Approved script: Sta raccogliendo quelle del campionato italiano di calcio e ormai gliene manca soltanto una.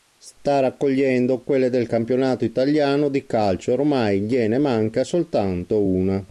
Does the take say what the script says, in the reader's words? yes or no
yes